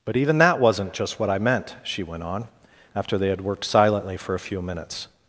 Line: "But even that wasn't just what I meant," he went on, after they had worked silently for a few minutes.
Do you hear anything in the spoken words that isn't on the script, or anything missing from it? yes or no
yes